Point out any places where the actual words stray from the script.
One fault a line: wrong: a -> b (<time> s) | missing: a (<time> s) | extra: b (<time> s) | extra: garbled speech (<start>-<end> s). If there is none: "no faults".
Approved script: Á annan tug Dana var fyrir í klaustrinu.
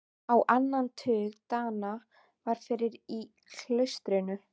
no faults